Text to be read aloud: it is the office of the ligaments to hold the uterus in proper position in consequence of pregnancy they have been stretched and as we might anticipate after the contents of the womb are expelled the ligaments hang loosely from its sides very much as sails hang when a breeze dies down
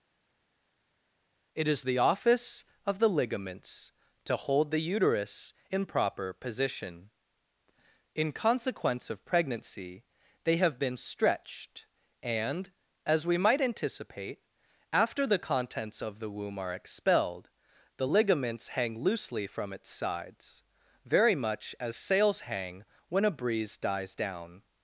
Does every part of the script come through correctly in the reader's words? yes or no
yes